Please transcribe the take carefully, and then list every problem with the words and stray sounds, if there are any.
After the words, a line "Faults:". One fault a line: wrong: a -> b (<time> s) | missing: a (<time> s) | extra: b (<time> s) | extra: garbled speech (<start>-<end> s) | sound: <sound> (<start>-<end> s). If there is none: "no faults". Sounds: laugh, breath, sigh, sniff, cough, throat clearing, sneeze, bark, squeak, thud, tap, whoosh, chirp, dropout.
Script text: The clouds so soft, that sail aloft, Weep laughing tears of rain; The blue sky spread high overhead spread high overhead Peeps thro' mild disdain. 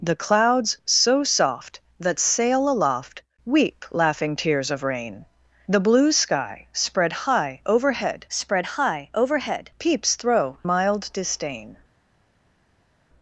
The clouds so soft, that sail aloft, Weep laughing tears of rain; The blue sky spread high overhead spread high overhead Peeps thro' mild disdain.
Faults:
no faults